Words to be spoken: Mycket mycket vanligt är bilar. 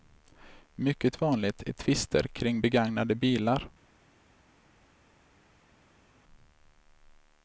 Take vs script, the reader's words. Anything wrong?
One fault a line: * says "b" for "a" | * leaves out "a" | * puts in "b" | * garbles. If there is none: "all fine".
* leaves out "mycket"
* puts in "tvister kring begagnade"